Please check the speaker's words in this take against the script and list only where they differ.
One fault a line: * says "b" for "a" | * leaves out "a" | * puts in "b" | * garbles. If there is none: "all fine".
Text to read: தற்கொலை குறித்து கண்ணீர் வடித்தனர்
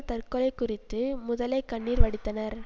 * puts in "முதலை"